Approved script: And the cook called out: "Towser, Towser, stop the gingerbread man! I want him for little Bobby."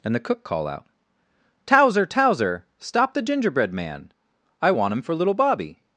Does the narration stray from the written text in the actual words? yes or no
yes